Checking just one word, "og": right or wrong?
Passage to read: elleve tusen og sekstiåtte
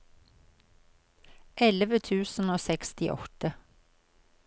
right